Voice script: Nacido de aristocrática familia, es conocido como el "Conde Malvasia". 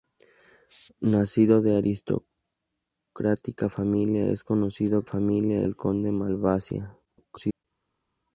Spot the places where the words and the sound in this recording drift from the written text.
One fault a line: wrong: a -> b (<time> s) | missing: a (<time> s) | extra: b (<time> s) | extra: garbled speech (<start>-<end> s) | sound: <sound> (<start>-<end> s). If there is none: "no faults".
wrong: como -> familia (5.0 s)
extra: garbled speech (7.0-7.6 s)